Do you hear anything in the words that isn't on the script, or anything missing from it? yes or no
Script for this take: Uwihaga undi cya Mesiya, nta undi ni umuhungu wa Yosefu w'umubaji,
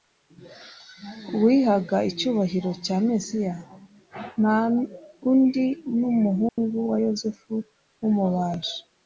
yes